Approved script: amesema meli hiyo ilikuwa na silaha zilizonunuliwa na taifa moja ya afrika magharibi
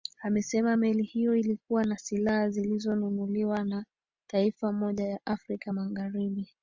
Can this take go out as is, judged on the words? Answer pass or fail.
pass